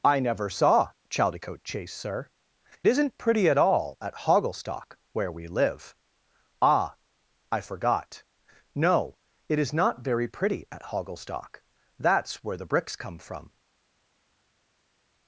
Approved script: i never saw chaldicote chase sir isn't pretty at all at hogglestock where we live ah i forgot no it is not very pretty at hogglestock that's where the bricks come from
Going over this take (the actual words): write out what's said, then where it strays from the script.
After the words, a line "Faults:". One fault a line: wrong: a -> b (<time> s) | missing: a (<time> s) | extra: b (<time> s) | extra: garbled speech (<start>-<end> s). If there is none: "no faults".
i never saw chaldicote chase sir isn't pretty at all at hogglestock where we live ah i forgot no it is not very pretty at hogglestock that's where the bricks come from
Faults:
no faults